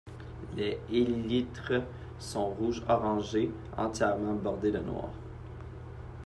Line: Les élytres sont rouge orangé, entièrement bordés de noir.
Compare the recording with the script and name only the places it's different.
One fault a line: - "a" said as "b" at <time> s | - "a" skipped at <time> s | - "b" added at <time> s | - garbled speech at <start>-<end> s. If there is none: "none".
none